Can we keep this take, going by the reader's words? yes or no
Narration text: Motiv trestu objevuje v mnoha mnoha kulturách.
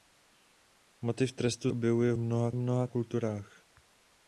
yes